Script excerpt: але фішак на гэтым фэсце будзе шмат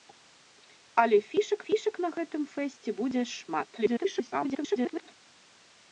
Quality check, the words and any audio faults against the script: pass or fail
fail